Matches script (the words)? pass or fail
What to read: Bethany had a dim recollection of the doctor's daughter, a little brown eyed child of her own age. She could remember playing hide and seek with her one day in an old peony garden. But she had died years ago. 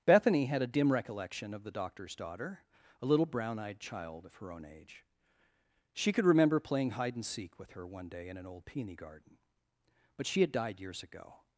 pass